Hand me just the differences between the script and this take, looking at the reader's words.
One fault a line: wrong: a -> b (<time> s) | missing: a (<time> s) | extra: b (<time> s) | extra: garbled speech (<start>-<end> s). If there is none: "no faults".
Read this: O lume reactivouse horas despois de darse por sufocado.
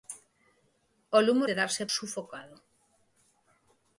missing: reactivouse horas despois (1.4 s)
missing: por (1.8 s)